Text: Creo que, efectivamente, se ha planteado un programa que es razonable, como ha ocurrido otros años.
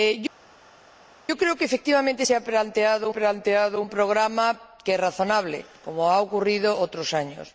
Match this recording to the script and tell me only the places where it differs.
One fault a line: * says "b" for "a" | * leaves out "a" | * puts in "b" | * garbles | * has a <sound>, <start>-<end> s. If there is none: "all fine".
* puts in "planteado"